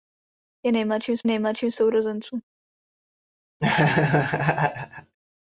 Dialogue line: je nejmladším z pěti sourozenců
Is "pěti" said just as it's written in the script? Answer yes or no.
no